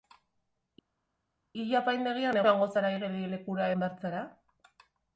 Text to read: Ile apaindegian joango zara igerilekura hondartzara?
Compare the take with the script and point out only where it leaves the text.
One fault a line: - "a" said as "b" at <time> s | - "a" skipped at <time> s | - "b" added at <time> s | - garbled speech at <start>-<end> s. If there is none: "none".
none